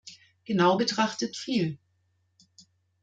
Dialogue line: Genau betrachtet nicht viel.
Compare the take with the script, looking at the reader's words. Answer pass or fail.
fail